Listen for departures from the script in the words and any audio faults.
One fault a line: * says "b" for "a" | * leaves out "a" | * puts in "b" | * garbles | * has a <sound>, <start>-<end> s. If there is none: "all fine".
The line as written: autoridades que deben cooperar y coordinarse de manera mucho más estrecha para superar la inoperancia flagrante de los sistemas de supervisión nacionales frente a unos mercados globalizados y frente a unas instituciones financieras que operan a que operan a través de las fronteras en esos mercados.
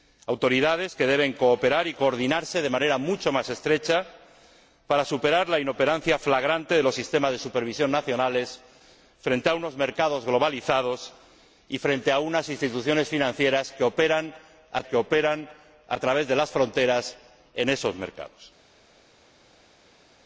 all fine